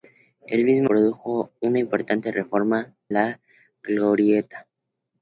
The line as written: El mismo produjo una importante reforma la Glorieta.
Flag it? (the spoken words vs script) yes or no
no